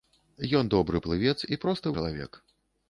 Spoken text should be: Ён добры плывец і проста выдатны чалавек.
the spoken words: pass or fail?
fail